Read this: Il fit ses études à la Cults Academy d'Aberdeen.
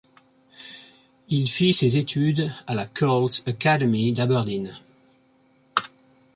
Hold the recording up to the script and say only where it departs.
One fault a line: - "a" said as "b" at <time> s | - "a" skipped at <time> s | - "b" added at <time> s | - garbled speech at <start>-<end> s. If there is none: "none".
none